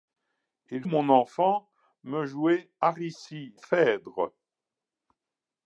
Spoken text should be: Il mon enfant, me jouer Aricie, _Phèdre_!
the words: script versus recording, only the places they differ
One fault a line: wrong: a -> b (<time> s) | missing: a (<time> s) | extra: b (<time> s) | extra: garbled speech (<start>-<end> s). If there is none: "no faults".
no faults